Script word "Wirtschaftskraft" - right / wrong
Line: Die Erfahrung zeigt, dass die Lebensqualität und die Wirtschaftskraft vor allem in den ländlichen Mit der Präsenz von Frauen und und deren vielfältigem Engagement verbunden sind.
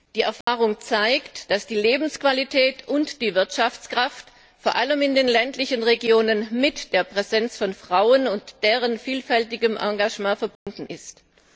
right